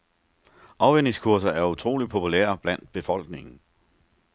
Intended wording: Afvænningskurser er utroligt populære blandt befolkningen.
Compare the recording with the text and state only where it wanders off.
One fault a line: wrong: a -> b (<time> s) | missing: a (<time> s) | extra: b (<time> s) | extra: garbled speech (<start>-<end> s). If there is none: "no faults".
no faults